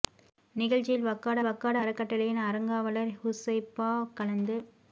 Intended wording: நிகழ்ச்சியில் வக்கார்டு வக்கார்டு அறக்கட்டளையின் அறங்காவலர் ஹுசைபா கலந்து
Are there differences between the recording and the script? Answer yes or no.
no